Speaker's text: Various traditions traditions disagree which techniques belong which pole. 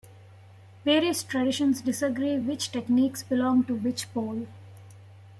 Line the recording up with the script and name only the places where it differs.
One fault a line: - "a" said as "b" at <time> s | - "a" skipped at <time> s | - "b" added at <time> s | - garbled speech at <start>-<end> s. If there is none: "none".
- "traditions" skipped at 1.8 s
- "to" added at 3.7 s